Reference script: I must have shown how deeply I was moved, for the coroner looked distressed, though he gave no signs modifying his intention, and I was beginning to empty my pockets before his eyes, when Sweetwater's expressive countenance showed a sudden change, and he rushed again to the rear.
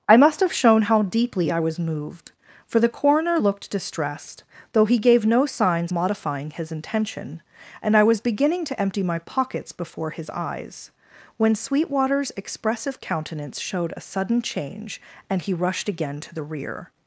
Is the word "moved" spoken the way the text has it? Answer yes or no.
yes